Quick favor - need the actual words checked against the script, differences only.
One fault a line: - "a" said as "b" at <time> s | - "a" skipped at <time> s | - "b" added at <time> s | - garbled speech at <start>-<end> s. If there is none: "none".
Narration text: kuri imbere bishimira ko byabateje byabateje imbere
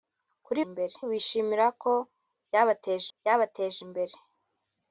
none